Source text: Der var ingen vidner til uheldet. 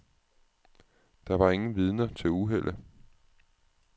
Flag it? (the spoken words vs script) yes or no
no